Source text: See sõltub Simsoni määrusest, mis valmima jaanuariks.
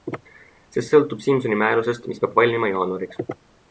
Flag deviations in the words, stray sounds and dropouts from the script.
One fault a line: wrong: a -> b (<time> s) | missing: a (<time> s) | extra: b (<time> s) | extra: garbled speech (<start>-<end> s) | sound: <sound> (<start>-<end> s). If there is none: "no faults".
extra: peab (2.2 s)